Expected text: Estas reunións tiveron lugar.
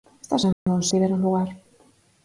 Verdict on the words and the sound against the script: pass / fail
fail